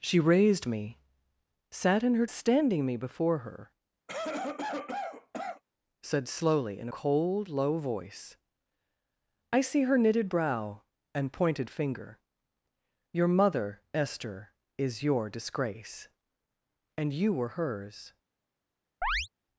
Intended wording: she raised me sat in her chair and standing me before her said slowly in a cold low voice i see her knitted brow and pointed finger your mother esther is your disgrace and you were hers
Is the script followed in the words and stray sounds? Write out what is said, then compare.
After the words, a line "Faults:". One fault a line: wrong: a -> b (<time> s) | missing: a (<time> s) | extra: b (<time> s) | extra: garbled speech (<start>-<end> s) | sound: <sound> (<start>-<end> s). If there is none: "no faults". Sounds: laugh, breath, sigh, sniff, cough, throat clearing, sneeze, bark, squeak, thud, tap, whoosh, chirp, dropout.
she raised me sat in her standing me before her said slowly in cold low voice i see her knitted brow and pointed finger your mother esther is your disgrace and you were hers
Faults:
missing: chair and (2.2 s)
sound: cough (4.1-5.6 s)
missing: a (6.9 s)
sound: chirp (19.0-19.3 s)